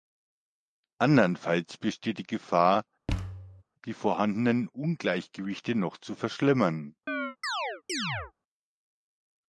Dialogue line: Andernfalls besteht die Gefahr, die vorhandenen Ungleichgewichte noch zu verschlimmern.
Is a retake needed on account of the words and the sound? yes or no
yes